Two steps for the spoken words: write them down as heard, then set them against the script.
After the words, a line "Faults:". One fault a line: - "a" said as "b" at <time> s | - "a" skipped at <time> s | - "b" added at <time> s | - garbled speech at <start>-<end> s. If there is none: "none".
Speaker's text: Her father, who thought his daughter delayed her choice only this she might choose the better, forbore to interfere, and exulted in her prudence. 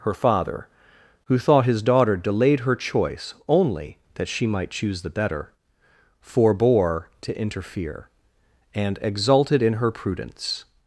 Her father, who thought his daughter delayed her choice only that she might choose the better, forbore to interfere, and exulted in her prudence.
Faults:
- "this" said as "that" at 4.2 s